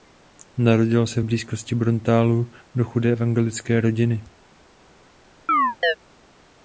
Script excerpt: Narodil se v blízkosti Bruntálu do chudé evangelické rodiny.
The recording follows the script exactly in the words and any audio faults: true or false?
false